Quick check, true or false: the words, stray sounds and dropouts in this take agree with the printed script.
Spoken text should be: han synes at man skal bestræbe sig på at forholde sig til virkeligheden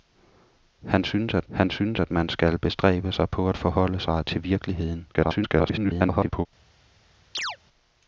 false